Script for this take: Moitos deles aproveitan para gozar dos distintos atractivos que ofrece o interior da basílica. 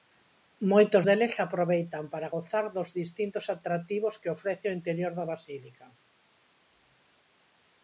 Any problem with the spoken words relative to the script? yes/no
no